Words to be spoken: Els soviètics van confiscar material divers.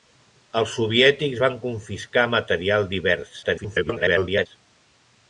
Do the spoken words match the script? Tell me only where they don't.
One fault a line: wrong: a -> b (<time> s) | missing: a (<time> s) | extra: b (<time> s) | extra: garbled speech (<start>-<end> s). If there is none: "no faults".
extra: garbled speech (3.4-4.5 s)